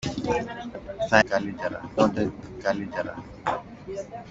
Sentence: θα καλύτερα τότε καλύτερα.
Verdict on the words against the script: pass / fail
pass